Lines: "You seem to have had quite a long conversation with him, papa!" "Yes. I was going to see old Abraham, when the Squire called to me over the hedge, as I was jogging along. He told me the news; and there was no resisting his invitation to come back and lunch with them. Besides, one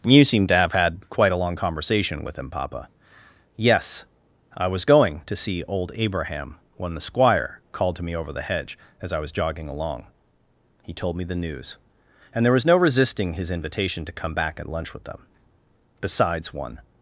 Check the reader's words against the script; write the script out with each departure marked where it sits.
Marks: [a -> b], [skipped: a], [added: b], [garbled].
"You seem to have had quite a long conversation with him, papa!" "Yes. I was going to see old Abraham, when the Squire called to me over the hedge, as I was jogging along. He told me the news; and there was no resisting his invitation to come back and lunch with them. Besides, one